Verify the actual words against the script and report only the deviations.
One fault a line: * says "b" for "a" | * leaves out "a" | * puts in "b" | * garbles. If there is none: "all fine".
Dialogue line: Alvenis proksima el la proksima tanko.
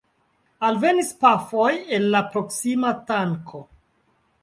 * says "pafoj" for "proksima"